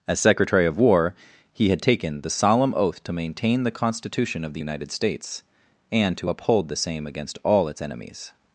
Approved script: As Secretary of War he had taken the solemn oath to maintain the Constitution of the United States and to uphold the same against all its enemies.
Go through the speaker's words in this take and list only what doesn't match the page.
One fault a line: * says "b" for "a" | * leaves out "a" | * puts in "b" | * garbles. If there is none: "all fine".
all fine